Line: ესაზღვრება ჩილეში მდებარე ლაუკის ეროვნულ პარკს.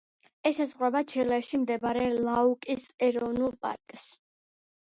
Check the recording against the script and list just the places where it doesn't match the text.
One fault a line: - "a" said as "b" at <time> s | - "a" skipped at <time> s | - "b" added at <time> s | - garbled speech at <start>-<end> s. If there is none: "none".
none